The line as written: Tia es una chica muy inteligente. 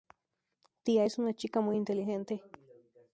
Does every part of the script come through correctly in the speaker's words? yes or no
yes